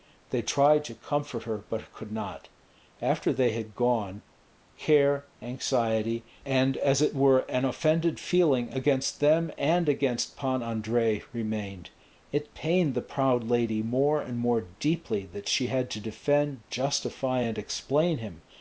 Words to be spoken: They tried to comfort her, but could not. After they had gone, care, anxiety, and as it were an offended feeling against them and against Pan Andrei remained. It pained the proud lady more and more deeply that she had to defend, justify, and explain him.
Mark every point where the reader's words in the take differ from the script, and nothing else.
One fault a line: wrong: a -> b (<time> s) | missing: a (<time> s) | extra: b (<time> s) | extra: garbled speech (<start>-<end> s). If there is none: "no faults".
no faults